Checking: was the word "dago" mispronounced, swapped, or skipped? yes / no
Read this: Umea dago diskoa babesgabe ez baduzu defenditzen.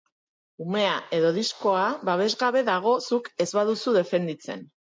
yes